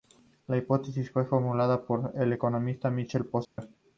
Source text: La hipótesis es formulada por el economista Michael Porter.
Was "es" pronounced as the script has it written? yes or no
no